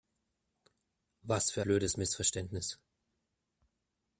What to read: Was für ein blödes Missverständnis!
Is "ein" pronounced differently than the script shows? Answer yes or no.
yes